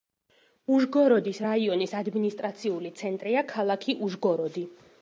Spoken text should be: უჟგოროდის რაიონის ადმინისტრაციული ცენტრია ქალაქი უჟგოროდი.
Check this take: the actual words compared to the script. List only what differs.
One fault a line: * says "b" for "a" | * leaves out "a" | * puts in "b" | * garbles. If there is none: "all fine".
all fine